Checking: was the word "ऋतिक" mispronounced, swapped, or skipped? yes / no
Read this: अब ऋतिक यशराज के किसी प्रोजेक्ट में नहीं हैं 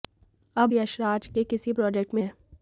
yes